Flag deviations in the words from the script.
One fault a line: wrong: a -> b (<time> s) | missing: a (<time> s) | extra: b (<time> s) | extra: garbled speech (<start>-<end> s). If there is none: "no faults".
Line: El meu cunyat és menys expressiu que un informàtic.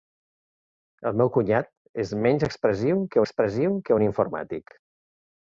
extra: expressiu que (3.2 s)